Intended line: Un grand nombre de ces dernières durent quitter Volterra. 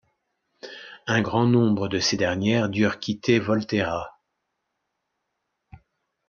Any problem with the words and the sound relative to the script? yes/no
no